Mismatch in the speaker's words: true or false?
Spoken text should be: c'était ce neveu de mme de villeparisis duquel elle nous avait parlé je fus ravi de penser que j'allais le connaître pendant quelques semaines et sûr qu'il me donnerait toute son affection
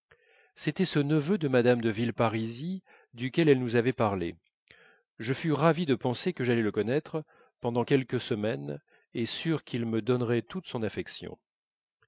false